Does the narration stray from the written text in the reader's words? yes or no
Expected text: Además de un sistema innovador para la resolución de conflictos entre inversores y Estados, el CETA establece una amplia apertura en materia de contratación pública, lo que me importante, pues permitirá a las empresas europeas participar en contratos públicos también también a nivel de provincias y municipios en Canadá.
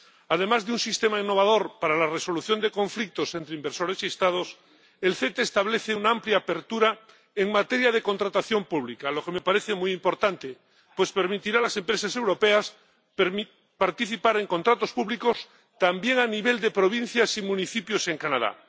yes